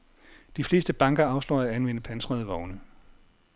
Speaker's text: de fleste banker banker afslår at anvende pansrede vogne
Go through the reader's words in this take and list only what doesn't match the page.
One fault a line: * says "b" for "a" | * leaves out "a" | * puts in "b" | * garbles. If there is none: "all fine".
* leaves out "banker"